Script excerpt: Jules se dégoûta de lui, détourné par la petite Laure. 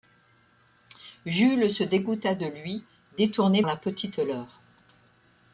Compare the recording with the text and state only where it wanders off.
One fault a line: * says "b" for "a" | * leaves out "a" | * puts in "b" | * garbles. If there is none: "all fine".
* leaves out "par"